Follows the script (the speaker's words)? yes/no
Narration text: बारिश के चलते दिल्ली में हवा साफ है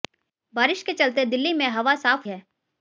yes